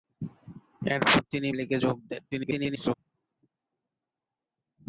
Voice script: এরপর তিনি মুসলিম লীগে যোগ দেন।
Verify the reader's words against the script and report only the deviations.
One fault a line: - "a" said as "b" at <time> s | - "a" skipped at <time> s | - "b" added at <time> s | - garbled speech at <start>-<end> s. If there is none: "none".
- "মুসলিম" skipped at 1.5 s
- garbled speech at 2.3-2.9 s